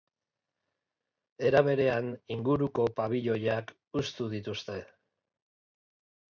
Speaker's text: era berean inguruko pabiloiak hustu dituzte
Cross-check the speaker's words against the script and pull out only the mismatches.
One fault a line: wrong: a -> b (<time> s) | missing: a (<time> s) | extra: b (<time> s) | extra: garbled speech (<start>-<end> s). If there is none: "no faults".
no faults